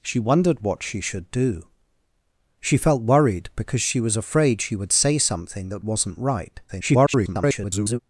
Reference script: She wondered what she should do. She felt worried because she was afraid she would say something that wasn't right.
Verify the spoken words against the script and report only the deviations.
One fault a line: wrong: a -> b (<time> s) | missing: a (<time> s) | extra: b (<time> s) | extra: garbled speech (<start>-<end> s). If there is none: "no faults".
extra: garbled speech (6.7-8.0 s)